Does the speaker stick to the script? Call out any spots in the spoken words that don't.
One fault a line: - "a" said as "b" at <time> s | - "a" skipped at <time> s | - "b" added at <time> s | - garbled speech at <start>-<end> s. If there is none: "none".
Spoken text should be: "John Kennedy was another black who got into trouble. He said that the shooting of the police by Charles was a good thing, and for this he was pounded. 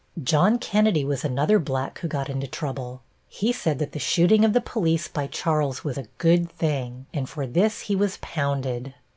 none